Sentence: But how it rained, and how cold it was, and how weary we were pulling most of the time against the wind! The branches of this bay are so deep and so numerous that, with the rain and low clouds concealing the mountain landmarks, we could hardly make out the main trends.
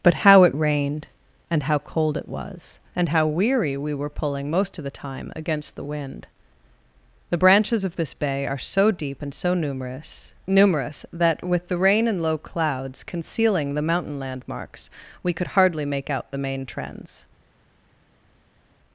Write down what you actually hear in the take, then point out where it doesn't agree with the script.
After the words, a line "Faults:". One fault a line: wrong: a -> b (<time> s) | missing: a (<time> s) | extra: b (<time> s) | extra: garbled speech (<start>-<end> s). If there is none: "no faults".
But how it rained, and how cold it was, and how weary we were pulling most of the time against the wind! The branches of this bay are so deep and so numerous numerous that, with the rain and low clouds concealing the mountain landmarks, we could hardly make out the main trends.
Faults:
extra: numerous (10.4 s)